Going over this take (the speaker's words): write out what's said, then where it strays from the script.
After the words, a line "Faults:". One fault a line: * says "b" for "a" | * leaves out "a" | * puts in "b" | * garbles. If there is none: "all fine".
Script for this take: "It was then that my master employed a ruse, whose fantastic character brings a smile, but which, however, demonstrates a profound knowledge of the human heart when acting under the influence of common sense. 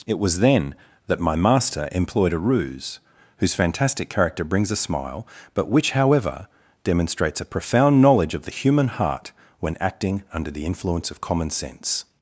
"It was then that my master employed a ruse, whose fantastic character brings a smile, but which, however, demonstrates a profound knowledge of the human heart when acting under the influence of common sense.
Faults:
all fine